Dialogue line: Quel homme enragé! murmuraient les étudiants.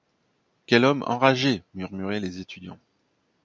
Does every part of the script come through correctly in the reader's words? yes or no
yes